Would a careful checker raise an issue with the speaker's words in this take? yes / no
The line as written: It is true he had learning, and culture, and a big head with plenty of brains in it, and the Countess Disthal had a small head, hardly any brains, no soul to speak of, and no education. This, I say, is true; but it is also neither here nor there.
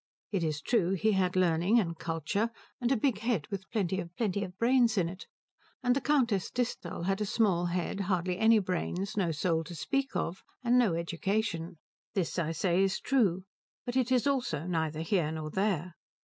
yes